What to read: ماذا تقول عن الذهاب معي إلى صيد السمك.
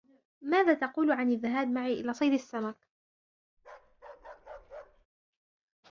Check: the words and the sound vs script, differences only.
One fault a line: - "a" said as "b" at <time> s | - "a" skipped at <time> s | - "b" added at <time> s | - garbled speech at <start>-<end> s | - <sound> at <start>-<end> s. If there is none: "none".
- bark at 3.6-5.1 s